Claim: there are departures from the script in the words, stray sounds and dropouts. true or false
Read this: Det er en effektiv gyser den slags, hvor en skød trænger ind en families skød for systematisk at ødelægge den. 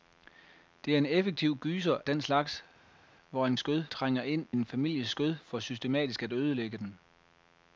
false